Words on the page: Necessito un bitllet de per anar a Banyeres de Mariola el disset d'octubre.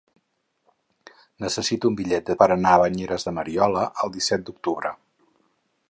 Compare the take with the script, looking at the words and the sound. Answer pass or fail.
pass